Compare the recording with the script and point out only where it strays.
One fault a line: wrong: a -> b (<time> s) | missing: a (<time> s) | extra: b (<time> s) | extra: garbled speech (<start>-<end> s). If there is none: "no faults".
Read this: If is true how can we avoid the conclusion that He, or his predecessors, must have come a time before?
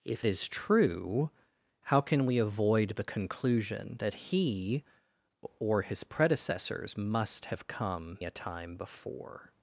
no faults